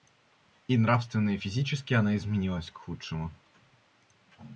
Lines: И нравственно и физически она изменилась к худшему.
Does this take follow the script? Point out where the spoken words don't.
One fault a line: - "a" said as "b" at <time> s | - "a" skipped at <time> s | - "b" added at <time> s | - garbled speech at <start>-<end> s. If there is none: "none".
none